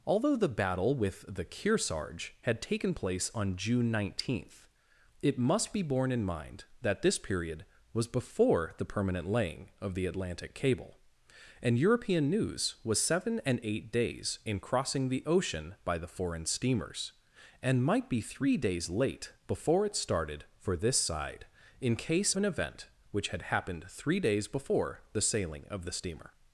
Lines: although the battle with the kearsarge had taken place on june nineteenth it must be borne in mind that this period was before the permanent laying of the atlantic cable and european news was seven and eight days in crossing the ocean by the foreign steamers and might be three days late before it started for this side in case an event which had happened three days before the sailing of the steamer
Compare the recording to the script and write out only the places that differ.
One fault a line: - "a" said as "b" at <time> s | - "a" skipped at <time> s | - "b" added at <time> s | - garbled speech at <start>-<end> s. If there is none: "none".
none